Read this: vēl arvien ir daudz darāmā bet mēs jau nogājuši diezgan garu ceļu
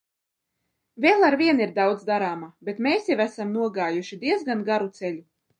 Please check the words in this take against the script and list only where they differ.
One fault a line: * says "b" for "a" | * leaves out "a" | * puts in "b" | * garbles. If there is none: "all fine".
* puts in "esam"